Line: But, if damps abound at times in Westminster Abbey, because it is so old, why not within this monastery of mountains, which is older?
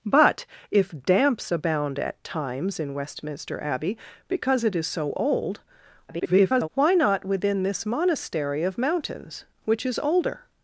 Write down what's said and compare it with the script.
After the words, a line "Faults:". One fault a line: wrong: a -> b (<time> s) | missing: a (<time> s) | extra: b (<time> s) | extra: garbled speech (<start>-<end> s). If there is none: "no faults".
But, if damps abound at times in Westminster Abbey, because it is so old, [garbled] why not within this monastery of mountains, which is older?
Faults:
extra: garbled speech (6.1-6.7 s)